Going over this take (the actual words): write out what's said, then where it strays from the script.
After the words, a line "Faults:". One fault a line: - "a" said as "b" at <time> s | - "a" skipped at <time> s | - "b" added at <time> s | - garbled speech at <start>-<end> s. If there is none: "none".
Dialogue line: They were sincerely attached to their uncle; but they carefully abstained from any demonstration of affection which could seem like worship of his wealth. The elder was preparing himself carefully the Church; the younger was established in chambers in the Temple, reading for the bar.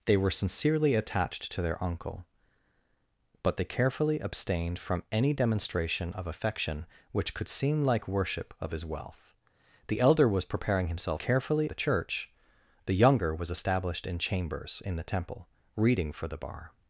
They were sincerely attached to their uncle; but they carefully abstained from any demonstration of affection which could seem like worship of his wealth. The elder was preparing himself carefully the Church; the younger was established in chambers in the Temple, reading for the bar.
Faults:
none